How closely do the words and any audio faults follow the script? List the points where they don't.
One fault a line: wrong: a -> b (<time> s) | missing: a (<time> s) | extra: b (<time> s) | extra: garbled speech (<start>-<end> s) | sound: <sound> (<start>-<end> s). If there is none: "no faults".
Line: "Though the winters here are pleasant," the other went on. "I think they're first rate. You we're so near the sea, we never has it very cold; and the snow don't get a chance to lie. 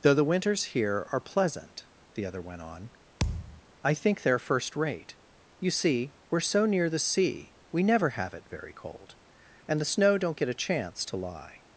sound: thud (3.2-3.6 s)
extra: see (5.7 s)
wrong: has -> have (8.1 s)